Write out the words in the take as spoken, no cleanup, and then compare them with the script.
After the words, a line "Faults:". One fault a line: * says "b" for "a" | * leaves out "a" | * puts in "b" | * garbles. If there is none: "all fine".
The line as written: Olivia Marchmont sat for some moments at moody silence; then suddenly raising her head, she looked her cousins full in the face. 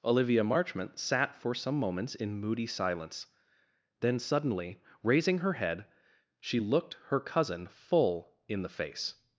Olivia Marchmont sat for some moments in moody silence; then suddenly raising her head, she looked her cousin full in the face.
Faults:
* says "in" for "at"
* says "cousin" for "cousins"